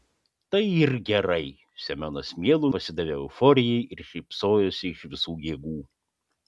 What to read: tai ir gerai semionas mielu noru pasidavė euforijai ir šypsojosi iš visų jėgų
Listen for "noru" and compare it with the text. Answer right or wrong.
wrong